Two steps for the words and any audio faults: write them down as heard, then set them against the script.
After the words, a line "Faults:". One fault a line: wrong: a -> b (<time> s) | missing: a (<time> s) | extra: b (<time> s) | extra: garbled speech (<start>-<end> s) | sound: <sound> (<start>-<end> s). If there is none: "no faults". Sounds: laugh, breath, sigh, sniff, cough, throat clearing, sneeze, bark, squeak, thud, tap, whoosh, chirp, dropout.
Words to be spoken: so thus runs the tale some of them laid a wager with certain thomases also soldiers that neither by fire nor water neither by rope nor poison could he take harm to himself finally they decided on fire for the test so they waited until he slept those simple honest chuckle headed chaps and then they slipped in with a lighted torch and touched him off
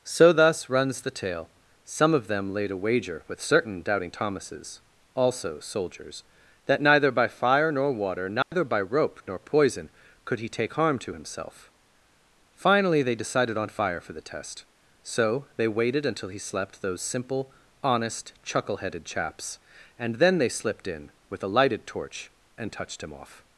so thus runs the tale some of them laid a wager with certain doubting thomases also soldiers that neither by fire nor water neither by rope nor poison could he take harm to himself finally they decided on fire for the test so they waited until he slept those simple honest chuckle headed chaps and then they slipped in with a lighted torch and touched him off
Faults:
extra: doubting (3.8 s)
sound: dropout (8.4-8.5 s)